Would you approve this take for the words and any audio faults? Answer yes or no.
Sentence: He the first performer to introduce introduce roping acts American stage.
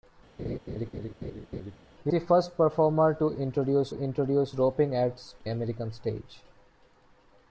no